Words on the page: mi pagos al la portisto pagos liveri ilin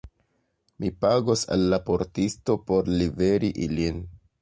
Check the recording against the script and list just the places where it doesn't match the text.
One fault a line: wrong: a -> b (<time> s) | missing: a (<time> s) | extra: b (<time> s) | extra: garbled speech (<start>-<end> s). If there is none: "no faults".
wrong: pagos -> por (2.7 s)